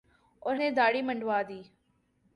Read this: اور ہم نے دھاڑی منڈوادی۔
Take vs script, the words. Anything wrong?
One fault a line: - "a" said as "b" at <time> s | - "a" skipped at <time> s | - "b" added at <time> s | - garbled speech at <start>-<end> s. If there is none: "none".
- "ہم" skipped at 0.6 s